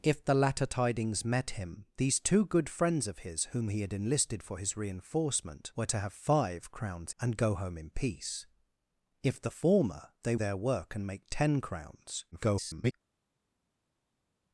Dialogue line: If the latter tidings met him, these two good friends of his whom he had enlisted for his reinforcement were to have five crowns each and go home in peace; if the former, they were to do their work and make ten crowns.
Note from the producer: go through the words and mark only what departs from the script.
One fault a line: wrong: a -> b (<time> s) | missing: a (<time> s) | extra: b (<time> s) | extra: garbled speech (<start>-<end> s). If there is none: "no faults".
missing: each (7.1 s)
missing: were to do (10.3 s)
extra: garbled speech (12.3-12.9 s)